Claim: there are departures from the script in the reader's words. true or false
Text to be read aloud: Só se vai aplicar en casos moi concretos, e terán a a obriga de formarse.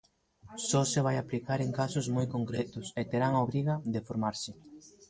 true